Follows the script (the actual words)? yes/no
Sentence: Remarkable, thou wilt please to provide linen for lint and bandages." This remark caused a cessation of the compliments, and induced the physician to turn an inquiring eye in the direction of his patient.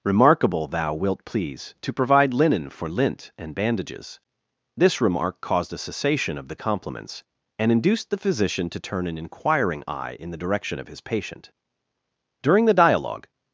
no